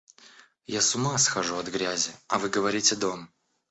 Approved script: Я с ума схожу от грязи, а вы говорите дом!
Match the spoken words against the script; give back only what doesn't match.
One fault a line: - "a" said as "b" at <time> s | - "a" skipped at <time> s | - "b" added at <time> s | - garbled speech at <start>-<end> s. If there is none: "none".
none